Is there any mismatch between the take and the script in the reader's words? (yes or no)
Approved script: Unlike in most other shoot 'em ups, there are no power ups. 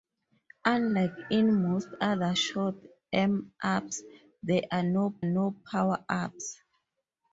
yes